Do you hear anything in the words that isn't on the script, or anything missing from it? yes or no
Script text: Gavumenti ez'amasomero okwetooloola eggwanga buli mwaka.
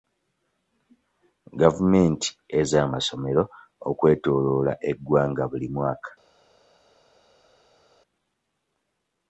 no